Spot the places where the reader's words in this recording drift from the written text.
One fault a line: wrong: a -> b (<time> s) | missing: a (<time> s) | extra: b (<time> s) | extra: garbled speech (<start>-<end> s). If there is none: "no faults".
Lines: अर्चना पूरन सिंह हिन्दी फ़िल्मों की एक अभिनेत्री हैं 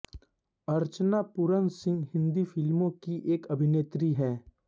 no faults